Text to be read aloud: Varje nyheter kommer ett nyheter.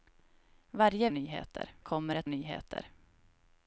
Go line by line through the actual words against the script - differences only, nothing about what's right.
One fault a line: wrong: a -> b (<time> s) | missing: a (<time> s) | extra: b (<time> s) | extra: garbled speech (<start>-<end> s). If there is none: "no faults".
no faults